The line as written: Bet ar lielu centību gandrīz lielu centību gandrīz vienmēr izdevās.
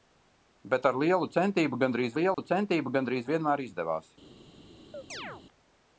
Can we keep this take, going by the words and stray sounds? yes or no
no